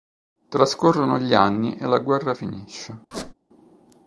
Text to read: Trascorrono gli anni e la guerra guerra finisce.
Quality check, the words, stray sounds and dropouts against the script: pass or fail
fail